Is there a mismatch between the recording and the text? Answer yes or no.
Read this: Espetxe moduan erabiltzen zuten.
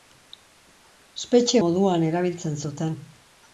no